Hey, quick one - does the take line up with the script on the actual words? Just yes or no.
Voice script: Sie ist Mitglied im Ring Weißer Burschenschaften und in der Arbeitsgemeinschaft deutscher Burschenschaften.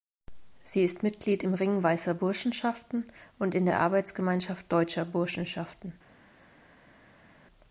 yes